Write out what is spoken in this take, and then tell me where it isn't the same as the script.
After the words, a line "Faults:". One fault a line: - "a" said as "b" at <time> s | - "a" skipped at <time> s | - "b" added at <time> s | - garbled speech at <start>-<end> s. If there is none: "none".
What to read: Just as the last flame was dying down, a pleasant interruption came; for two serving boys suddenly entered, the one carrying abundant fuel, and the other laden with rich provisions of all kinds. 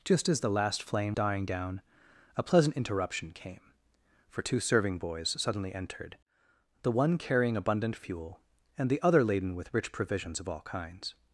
Just as the last flame dying down, a pleasant interruption came; for two serving boys suddenly entered, the one carrying abundant fuel, and the other laden with rich provisions of all kinds.
Faults:
- "was" skipped at 1.2 s